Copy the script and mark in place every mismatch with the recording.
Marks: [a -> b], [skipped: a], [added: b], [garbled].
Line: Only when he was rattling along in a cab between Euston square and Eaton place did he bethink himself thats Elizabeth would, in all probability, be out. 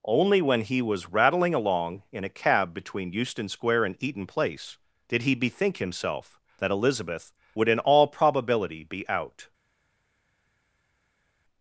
Only when he was rattling along in a cab between Euston square and Eaton place did he bethink himself [thats -> that] Elizabeth would, in all probability, be out.